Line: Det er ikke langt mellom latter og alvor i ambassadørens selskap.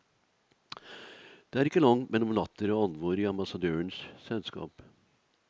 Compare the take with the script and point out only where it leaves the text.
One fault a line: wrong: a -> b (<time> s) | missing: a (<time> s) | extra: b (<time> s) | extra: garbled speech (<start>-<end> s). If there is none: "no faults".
no faults